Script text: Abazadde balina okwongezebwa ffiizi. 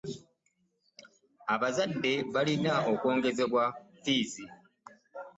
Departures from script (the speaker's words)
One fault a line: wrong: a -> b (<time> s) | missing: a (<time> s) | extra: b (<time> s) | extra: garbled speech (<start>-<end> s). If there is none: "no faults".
no faults